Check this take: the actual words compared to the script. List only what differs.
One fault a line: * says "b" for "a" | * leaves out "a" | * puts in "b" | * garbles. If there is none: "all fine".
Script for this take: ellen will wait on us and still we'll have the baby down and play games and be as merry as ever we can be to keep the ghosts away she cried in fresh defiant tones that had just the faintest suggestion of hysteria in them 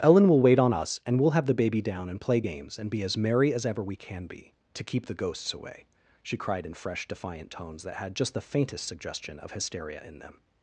* leaves out "still"